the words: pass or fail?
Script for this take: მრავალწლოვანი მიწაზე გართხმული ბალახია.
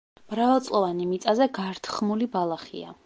pass